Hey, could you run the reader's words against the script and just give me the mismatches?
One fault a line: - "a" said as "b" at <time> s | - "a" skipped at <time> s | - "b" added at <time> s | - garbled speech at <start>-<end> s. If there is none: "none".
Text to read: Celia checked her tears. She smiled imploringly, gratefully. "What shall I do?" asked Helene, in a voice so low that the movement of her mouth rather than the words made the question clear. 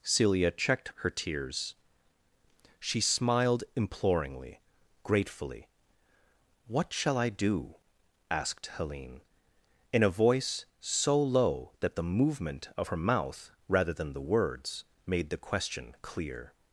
none